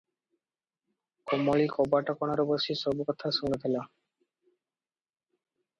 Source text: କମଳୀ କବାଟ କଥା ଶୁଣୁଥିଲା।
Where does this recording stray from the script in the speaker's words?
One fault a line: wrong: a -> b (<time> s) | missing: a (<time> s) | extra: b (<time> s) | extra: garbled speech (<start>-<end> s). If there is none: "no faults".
extra: କଣରେ ବସି ସବୁ (2.2 s)